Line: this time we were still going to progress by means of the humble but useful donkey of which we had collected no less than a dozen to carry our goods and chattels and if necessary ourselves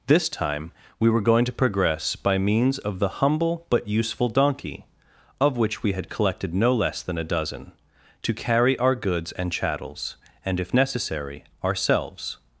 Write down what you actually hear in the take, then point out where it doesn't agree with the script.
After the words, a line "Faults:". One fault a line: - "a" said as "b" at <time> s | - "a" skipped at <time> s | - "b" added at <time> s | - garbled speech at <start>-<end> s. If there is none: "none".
this time we were going to progress by means of the humble but useful donkey of which we had collected no less than a dozen to carry our goods and chattels and if necessary ourselves
Faults:
- "still" skipped at 1.2 s